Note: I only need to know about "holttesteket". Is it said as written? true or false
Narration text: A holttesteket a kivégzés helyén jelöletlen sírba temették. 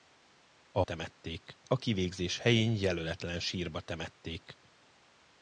false